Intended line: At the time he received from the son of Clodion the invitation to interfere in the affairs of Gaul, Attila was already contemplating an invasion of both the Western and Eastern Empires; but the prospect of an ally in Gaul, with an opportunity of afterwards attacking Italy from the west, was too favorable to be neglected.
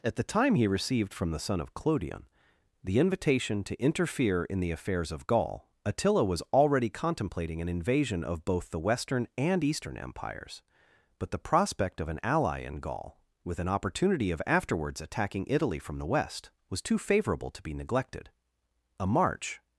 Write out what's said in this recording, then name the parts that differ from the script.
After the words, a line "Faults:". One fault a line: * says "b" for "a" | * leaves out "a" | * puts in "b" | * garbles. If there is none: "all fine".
At the time he received from the son of Clodion the invitation to interfere in the affairs of Gaul, Attila was already contemplating an invasion of both the Western and Eastern Empires; but the prospect of an ally in Gaul, with an opportunity of afterwards attacking Italy from the west, was too favorable to be neglected. A march
Faults:
* puts in "A march"